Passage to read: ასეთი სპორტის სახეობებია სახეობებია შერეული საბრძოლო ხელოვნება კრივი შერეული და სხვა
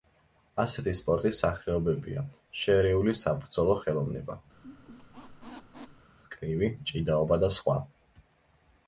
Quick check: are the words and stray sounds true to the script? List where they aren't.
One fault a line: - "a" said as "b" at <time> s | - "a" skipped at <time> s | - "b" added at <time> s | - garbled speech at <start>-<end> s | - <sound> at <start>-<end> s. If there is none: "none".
- "სახეობებია" skipped at 2.2 s
- squeak at 4.5-6.1 s
- "შერეული" said as "ჭიდაობა" at 6.9 s